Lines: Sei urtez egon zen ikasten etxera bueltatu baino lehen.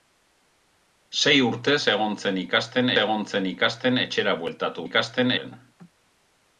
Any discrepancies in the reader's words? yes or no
yes